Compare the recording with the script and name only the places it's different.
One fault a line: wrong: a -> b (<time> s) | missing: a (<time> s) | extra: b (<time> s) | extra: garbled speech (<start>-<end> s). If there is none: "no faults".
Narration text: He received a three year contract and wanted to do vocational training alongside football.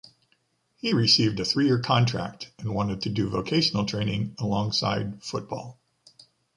no faults